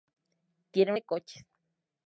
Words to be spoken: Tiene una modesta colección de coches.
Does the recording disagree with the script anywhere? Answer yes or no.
yes